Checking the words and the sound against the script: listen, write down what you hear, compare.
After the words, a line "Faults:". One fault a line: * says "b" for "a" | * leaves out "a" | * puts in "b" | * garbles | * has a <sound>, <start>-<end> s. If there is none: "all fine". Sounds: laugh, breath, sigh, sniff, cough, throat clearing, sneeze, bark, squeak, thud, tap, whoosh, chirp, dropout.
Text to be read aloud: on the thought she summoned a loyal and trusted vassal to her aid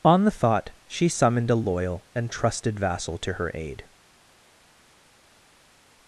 on the thought she summoned a loyal and trusted vassal to her aid
Faults:
all fine